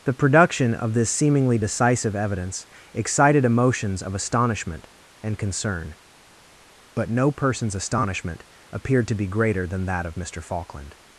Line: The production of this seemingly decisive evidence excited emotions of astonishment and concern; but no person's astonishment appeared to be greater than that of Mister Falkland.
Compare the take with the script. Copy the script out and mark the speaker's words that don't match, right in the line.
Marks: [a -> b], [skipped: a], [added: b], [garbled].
The production of this seemingly decisive evidence excited emotions of astonishment and concern; but no person's astonishment appeared to be greater than that of Mister Falkland.